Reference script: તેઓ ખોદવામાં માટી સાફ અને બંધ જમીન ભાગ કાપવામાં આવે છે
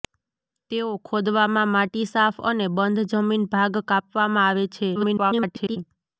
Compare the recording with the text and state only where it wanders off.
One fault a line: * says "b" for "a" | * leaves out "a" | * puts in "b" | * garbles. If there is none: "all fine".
* garbles